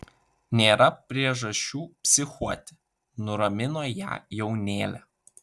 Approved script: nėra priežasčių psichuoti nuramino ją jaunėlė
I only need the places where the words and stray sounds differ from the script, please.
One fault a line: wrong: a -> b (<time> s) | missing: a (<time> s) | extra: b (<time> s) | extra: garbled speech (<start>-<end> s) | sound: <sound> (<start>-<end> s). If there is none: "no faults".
no faults